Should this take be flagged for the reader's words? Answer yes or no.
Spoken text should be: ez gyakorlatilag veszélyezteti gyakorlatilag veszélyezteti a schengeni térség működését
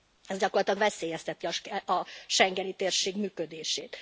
yes